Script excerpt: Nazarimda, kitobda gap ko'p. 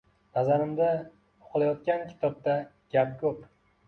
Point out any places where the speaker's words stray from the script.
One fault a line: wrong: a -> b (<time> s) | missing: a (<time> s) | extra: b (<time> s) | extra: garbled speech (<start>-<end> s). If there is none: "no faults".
extra: o‘qilayotgan (1.5 s)